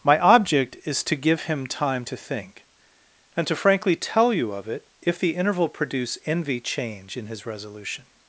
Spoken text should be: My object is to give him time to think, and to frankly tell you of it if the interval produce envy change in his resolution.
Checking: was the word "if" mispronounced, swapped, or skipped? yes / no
no